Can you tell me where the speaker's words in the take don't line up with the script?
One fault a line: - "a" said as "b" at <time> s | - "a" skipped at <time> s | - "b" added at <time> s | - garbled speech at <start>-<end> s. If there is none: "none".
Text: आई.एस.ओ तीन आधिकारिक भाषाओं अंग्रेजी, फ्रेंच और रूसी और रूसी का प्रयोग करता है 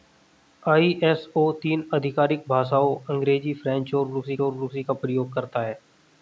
none